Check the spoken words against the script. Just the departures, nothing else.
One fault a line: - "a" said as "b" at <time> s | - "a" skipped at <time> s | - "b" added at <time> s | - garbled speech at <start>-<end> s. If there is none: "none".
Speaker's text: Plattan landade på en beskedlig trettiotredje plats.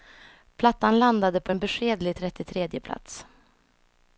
none